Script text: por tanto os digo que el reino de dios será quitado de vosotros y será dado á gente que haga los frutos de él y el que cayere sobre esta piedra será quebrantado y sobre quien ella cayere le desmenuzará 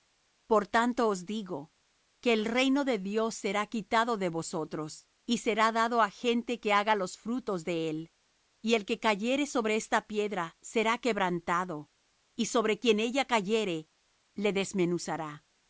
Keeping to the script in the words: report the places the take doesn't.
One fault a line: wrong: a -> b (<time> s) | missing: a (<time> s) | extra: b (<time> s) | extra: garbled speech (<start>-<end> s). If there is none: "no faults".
no faults